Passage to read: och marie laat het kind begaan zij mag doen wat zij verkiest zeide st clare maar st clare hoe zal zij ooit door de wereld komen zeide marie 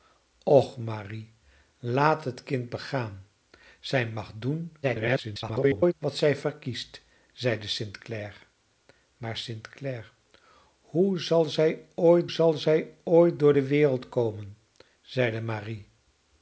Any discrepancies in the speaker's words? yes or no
yes